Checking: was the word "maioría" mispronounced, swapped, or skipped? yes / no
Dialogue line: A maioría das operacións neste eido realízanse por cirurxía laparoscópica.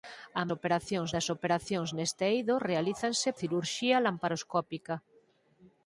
yes